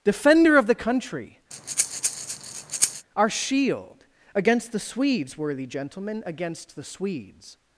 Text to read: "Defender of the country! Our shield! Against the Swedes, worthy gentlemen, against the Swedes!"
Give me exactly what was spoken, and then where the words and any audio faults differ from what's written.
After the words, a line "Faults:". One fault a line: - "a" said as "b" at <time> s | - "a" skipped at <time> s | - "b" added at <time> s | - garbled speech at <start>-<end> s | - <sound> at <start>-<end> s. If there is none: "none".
"Defender of the country! Our shield! Against the Swedes, worthy gentlemen, against the Swedes!"
Faults:
- breath at 1.5-3.1 s